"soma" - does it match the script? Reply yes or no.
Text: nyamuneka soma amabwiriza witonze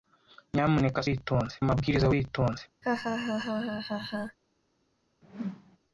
no